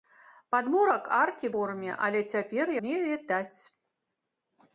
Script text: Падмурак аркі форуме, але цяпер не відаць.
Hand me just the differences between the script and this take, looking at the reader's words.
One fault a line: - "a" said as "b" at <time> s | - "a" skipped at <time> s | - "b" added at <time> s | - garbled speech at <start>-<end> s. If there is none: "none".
none